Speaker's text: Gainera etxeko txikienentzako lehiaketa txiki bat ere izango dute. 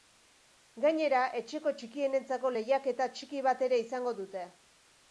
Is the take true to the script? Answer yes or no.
yes